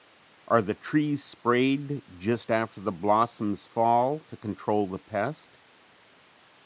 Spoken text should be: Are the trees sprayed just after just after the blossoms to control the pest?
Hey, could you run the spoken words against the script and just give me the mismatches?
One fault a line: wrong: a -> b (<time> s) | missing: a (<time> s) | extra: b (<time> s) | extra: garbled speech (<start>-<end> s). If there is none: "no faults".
missing: just after (2.8 s)
extra: fall (3.7 s)